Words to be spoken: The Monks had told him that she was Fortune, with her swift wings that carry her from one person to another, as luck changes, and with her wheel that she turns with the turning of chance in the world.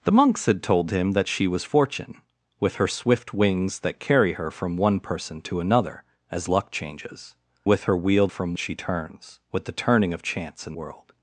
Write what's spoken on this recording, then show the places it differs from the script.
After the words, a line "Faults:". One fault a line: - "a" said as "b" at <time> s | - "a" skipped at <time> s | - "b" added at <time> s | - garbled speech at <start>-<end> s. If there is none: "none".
The Monks had told him that she was Fortune, with her swift wings that carry her from one person to another, as luck changes, with her wheel from she turns with the turning of chance in world.
Faults:
- "and" skipped at 7.3 s
- "that" said as "from" at 8.3 s
- "the" skipped at 10.7 s